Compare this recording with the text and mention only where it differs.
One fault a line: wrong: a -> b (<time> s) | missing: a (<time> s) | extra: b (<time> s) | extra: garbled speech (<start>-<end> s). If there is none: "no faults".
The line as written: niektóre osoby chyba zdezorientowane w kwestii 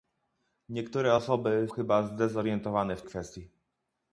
no faults